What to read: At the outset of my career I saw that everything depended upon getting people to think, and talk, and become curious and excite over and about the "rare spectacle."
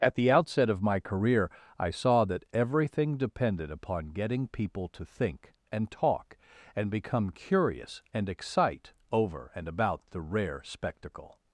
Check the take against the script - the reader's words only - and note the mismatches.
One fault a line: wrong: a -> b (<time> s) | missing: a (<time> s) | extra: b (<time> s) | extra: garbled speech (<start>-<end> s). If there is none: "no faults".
no faults